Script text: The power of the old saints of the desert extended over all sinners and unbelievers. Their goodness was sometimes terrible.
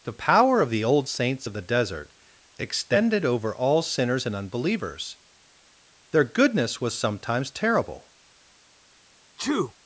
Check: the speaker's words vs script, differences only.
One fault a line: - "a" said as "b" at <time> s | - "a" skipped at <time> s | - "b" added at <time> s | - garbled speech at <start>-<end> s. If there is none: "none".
none